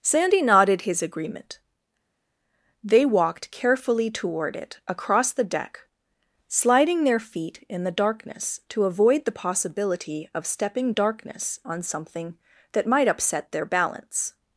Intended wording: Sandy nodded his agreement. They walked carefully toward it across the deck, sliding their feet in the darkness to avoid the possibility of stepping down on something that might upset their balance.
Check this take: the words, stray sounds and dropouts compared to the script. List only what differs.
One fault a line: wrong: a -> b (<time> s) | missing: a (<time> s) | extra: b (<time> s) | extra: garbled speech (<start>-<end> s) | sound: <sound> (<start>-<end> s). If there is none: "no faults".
wrong: down -> darkness (10.9 s)